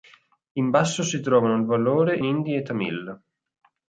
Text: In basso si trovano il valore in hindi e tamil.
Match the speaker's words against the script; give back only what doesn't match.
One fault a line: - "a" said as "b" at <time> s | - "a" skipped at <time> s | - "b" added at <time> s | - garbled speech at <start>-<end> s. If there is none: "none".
- "in" skipped at 2.2 s